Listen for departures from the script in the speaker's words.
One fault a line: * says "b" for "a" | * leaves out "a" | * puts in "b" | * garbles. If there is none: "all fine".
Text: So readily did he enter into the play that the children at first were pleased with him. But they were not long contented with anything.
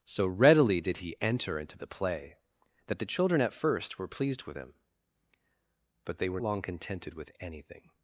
* leaves out "not"